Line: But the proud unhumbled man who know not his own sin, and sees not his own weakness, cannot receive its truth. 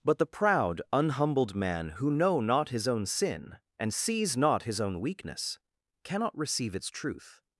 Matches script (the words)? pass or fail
pass